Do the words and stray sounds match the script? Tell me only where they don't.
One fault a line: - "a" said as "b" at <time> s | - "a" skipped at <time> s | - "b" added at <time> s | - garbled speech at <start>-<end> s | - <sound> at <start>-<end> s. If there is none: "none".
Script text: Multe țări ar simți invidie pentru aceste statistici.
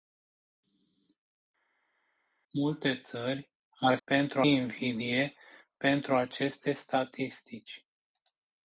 - "simți" said as "pentru" at 4.0 s